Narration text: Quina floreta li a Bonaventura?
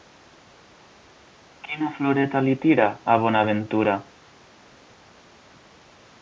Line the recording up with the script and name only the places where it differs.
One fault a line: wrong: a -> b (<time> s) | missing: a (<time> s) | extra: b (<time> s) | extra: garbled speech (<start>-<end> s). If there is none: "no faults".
extra: tira (2.6 s)